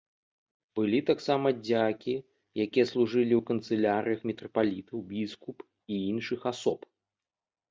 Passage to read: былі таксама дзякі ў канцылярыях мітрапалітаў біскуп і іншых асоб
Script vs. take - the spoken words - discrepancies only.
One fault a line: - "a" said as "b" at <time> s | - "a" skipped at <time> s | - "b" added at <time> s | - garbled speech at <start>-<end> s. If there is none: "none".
- "якія служылі" added at 2.6 s